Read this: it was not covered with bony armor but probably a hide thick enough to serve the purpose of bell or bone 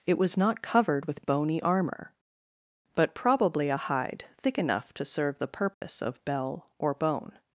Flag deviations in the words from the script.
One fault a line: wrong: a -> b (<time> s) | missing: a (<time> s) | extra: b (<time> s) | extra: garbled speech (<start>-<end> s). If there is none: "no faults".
no faults